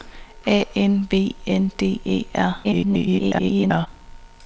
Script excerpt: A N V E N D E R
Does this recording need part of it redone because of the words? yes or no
yes